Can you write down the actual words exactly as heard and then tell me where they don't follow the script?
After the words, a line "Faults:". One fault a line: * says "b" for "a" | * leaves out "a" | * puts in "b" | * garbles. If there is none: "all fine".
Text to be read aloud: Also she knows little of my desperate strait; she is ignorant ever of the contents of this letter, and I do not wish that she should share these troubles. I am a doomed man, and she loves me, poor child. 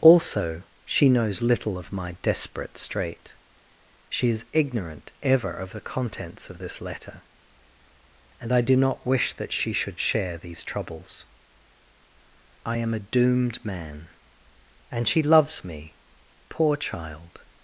Also she knows little of my desperate strait; she is ignorant ever of the contents of this letter, and I do not wish that she should share these troubles. I am a doomed man, and she loves me, poor child.
Faults:
all fine